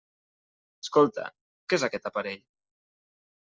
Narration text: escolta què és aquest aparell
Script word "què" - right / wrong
right